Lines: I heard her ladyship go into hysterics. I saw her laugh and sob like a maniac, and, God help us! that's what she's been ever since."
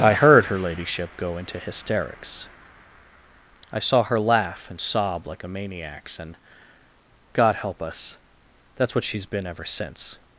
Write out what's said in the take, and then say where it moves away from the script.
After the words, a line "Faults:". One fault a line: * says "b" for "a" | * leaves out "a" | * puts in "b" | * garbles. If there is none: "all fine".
I heard her ladyship go into hysterics. I saw her laugh and sob like a maniacs, and, God help us! that's what she's been ever since."
Faults:
* says "maniacs" for "maniac"